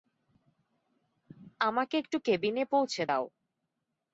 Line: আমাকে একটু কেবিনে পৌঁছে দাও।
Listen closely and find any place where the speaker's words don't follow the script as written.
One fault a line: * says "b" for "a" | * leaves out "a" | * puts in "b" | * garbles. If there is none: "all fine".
all fine